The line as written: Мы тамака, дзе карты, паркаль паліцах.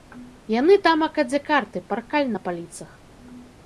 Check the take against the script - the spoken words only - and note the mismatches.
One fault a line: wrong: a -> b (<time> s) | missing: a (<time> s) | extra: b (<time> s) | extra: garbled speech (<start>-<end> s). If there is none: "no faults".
wrong: Мы -> Яны (0.6 s)
extra: на (2.3 s)